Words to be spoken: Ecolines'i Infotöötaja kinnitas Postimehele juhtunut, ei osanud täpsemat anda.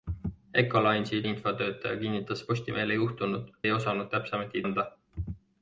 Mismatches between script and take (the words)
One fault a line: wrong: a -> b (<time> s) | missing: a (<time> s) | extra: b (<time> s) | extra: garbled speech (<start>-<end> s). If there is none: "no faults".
no faults